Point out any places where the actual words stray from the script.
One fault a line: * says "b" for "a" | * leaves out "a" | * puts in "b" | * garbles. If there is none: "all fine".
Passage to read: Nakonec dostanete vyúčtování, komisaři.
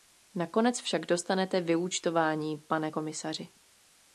* puts in "však"
* puts in "pane"